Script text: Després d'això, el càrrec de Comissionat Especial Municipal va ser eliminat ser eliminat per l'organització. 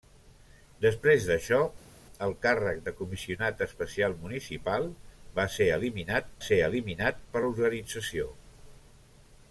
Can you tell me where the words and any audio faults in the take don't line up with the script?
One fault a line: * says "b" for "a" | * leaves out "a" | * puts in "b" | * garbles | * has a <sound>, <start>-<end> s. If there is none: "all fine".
all fine